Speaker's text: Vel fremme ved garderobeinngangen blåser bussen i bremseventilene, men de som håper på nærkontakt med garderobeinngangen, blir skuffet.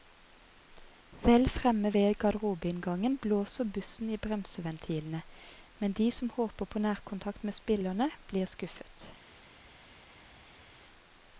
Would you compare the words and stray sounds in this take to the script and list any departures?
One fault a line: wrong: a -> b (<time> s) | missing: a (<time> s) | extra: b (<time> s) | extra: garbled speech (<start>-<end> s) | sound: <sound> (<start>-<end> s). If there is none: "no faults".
wrong: garderobeinngangen -> spillerne (7.5 s)